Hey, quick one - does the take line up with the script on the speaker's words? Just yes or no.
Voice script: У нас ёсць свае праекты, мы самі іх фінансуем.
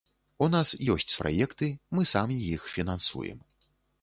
no